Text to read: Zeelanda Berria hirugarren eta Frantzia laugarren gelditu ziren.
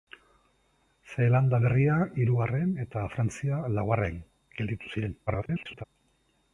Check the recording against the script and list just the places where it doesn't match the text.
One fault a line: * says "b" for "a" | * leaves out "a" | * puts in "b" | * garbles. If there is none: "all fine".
* garbles